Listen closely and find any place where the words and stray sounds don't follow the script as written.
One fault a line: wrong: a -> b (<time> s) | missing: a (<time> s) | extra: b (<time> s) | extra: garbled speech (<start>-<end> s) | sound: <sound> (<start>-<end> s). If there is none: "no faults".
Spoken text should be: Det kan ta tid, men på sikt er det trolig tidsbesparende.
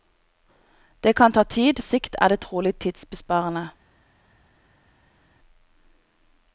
missing: men på (1.8 s)